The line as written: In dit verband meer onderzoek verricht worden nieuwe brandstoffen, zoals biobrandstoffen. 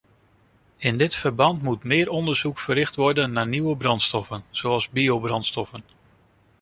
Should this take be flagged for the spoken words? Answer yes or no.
yes